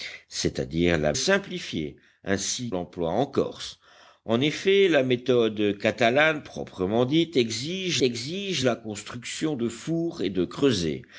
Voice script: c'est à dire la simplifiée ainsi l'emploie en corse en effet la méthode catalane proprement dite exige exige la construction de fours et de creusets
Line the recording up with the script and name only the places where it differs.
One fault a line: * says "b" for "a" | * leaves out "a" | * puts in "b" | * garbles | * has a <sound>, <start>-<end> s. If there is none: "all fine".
all fine